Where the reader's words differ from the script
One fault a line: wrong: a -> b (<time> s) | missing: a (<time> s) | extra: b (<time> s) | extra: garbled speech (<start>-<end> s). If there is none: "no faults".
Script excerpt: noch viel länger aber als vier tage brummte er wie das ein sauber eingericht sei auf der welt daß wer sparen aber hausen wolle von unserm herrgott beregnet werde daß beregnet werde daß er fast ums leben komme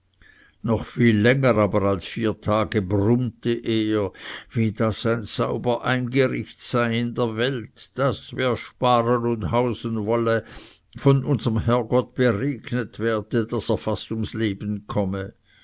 wrong: auf -> in (7.0 s)
wrong: aber -> und (9.3 s)
missing: beregnet werde daß (13.7 s)